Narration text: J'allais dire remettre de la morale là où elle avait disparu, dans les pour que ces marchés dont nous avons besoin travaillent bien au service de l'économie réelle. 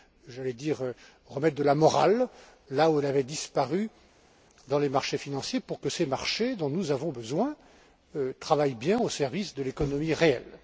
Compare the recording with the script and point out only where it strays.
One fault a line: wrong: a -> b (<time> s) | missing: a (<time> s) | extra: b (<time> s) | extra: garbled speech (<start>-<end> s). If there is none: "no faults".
extra: marchés financiers (4.9 s)